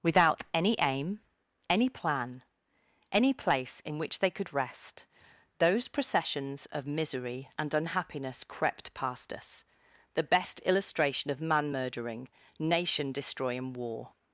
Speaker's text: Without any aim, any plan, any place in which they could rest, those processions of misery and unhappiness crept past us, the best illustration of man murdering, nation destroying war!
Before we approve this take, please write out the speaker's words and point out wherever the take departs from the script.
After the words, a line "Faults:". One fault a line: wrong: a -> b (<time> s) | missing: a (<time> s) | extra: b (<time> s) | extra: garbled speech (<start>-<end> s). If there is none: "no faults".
Without any aim, any plan, any place in which they could rest, those processions of misery and unhappiness crept past us, the best illustration of man murdering, nation destroying war!
Faults:
no faults